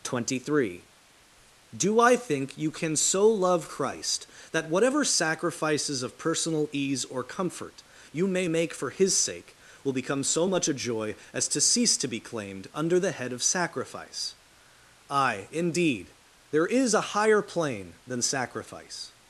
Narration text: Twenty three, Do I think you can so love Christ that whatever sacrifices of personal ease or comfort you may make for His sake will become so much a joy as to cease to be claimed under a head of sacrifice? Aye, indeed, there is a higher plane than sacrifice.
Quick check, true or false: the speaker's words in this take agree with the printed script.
false